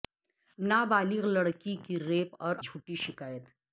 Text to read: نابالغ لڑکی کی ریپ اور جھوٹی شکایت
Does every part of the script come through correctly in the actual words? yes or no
yes